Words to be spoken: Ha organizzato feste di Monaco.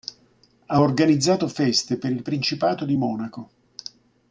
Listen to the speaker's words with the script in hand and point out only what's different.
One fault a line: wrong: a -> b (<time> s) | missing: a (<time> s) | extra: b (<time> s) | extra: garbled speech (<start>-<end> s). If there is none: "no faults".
extra: per il Principato (2.0 s)